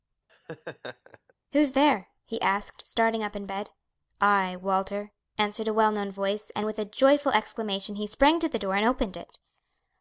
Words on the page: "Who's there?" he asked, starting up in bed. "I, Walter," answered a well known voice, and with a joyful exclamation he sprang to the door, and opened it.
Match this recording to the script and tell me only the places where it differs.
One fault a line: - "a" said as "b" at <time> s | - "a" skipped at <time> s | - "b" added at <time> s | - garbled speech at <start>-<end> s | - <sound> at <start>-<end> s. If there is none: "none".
- laugh at 0.3-1.3 s